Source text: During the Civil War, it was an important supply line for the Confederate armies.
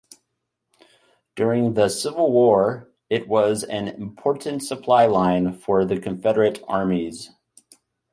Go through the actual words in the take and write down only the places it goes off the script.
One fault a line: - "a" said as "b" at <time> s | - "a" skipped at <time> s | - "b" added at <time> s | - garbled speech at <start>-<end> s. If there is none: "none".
none